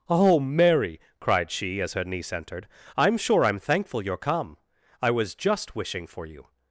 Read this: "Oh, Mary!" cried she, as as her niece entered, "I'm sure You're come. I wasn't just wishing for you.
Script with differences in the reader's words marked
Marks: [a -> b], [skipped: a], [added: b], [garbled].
"Oh, Mary!" cried she, as [skipped: as] her niece entered, "I'm sure [added: I'm thankful] You're come. I [wasn't -> was] just wishing for you.